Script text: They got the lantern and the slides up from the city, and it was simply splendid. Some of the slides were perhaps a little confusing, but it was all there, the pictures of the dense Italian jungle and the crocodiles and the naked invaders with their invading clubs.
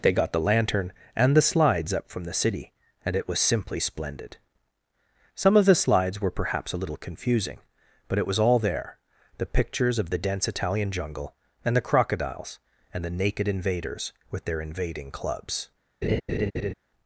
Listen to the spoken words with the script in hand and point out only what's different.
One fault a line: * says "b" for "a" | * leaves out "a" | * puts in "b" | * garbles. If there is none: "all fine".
all fine